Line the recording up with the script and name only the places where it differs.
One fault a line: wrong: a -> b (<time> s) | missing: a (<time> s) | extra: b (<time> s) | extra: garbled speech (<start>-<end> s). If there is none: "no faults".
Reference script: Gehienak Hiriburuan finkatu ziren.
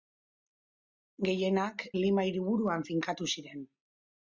extra: Lima (2.0 s)